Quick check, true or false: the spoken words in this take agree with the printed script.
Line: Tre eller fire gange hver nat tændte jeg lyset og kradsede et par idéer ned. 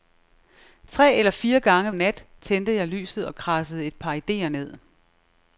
false